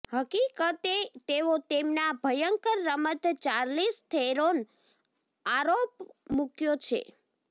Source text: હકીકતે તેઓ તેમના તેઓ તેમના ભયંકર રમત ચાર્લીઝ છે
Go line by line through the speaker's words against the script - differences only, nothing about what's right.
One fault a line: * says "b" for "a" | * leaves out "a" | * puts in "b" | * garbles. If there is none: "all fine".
* leaves out "તેઓ તેમના"
* puts in "થેરોન આરોપ મૂક્યો"